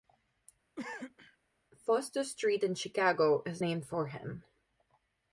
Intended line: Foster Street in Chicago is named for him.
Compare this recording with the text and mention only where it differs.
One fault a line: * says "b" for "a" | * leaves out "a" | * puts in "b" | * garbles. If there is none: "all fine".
all fine